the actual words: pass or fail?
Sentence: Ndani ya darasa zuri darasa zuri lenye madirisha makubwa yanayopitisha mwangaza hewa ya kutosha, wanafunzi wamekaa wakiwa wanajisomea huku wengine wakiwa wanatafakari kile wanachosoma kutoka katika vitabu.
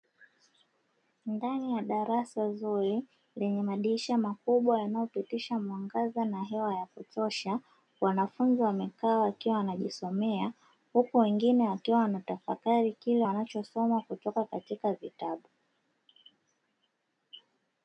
fail